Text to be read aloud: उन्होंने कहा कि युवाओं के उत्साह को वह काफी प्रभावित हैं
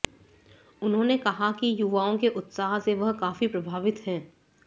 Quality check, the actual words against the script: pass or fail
fail